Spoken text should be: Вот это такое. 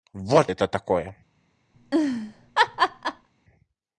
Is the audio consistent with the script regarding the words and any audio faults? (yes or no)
no